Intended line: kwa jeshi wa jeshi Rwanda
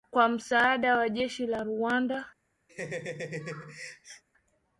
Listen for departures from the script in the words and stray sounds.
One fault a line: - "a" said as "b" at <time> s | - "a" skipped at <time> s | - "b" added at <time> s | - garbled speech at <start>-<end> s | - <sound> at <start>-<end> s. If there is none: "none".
- "jeshi" said as "msaada" at 0.3 s
- "la" added at 1.5 s
- laugh at 2.7-4.2 s